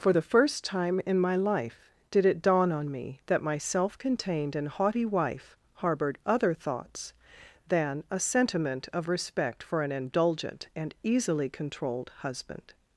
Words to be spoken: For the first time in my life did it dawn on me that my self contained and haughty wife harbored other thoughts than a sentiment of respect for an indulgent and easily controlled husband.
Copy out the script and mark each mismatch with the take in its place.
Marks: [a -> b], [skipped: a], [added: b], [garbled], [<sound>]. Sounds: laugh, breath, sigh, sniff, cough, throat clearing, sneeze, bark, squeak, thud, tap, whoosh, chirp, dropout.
For the first time in my life did it dawn on me that my self contained and haughty wife harbored other thoughts than a sentiment of respect for an indulgent and easily controlled husband.